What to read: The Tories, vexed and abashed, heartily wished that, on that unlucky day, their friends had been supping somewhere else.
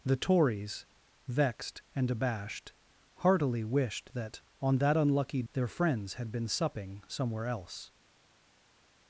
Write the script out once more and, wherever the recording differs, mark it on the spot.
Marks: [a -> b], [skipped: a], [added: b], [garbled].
The Tories, vexed and abashed, heartily wished that, on that unlucky [skipped: day,] their friends had been supping somewhere else.